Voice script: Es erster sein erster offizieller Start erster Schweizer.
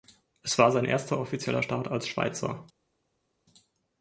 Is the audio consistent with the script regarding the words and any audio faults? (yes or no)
no